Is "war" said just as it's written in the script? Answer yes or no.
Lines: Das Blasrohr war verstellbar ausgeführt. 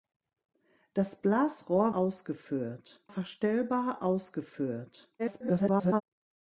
no